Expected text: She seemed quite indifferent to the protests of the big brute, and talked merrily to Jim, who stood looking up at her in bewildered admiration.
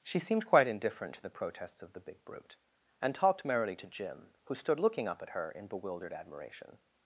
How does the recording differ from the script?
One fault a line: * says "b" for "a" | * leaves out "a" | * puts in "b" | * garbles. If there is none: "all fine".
all fine